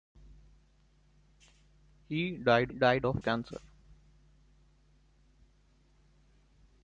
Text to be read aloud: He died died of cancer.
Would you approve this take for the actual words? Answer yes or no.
yes